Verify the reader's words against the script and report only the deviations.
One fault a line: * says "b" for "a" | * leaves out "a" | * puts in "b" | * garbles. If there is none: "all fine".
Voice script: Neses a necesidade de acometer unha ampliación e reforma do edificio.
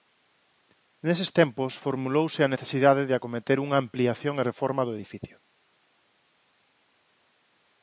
* puts in "tempos formulouse"